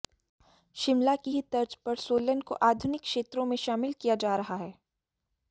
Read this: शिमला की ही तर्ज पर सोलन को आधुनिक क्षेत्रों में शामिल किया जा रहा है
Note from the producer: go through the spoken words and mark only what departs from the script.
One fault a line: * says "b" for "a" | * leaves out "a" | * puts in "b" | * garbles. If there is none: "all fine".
all fine